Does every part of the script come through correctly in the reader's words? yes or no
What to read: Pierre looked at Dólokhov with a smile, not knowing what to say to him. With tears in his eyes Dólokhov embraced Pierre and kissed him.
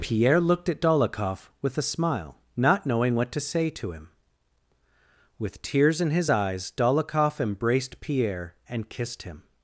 yes